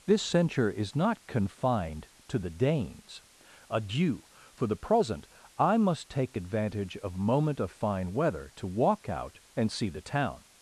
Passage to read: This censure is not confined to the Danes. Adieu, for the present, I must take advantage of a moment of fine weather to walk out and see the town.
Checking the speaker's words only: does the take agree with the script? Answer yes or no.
no